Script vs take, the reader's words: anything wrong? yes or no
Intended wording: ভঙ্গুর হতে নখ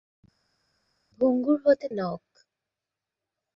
no